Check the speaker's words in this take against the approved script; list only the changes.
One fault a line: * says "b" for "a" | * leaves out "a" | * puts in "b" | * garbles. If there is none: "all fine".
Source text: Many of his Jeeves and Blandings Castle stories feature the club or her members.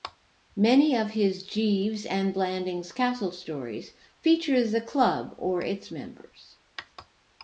* says "its" for "her"